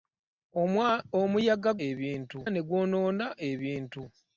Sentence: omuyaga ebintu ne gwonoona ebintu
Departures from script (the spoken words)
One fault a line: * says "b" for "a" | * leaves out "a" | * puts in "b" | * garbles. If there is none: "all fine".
all fine